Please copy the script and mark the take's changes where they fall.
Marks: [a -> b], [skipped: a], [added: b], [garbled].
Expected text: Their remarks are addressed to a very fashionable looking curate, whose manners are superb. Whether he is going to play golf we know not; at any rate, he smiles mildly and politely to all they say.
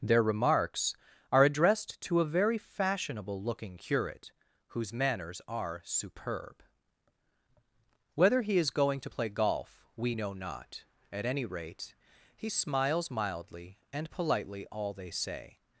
Their remarks are addressed to a very fashionable looking curate, whose manners are superb. Whether he is going to play golf we know not; at any rate, he smiles mildly and politely [skipped: to] all they say.